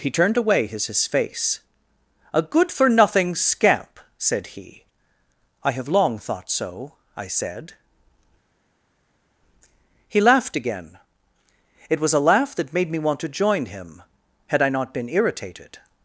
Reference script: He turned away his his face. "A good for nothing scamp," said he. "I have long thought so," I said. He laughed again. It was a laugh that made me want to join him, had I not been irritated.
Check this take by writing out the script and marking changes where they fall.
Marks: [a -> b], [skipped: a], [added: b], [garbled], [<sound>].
He turned away his his face. "A good for nothing scamp," said he. "I have long thought so," I said. He laughed again. It was a laugh that made me want to join him, had I not been irritated.